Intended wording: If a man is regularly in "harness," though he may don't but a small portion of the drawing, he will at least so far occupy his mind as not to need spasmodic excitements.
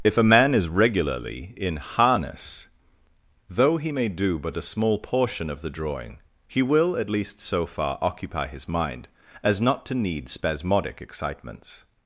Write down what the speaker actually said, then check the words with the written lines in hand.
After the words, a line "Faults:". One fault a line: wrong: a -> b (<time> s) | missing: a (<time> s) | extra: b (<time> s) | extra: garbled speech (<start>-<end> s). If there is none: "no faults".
If a man is regularly in "harness," though he may do but a small portion of the drawing, he will at least so far occupy his mind as not to need spasmodic excitements.
Faults:
wrong: don't -> do (4.1 s)